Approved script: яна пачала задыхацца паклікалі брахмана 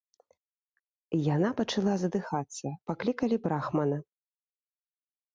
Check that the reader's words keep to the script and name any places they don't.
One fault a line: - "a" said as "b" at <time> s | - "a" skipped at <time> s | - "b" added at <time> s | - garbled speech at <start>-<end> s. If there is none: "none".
none